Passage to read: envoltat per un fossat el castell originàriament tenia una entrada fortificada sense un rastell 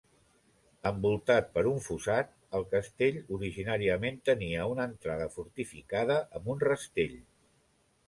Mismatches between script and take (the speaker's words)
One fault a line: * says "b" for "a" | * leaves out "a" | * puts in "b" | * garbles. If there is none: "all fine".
* says "amb" for "sense"